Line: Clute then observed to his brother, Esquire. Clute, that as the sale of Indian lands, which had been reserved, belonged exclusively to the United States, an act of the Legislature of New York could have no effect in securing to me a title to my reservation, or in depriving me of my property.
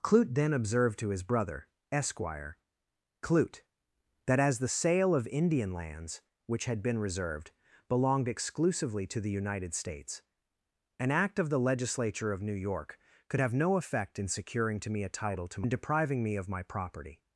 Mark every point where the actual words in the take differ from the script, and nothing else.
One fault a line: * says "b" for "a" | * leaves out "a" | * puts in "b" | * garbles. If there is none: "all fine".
* leaves out "my reservation or"